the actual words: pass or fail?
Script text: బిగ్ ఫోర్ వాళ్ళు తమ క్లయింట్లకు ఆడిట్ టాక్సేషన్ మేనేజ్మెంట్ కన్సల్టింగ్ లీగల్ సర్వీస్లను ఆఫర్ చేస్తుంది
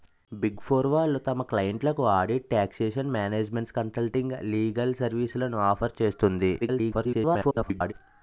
fail